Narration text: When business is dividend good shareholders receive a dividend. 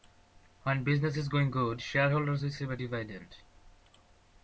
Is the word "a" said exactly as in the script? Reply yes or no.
yes